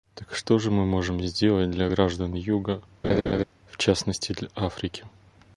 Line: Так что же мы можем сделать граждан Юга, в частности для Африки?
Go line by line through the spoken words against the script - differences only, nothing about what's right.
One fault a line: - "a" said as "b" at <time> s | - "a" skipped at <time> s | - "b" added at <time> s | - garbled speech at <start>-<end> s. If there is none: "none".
- "для" added at 1.7 s